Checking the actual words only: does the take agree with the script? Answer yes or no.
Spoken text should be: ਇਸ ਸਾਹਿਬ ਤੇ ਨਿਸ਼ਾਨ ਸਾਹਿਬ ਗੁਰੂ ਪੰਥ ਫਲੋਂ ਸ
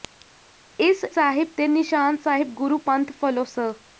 yes